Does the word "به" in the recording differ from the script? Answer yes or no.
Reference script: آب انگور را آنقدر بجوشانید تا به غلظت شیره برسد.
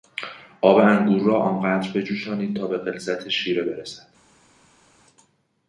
no